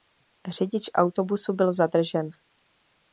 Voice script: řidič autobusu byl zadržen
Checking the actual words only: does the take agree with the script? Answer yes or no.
yes